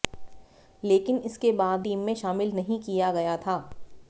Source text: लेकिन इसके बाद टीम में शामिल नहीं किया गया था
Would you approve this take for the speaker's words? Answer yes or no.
yes